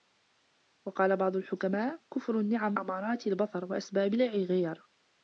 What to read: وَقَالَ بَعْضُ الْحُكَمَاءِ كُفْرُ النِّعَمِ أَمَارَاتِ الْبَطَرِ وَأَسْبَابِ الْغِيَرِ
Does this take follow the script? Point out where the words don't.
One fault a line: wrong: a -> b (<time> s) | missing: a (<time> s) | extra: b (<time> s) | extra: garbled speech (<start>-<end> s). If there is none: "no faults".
no faults